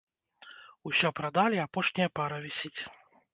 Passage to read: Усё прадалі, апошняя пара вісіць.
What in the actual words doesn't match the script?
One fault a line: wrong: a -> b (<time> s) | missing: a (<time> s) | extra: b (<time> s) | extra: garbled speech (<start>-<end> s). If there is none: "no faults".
no faults